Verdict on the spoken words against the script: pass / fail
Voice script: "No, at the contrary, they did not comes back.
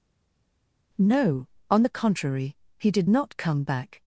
fail